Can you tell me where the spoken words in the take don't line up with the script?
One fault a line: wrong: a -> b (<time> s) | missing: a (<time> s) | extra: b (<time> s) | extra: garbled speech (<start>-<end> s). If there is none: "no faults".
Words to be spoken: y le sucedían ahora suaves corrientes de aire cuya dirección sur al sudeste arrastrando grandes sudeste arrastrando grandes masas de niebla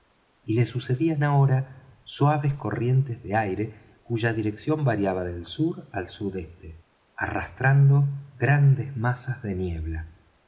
extra: variaba del (4.8 s)
missing: sudeste arrastrando grandes (9.0 s)